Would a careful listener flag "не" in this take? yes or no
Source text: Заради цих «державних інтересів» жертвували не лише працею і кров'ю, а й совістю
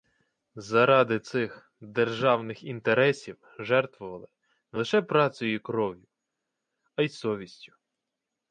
no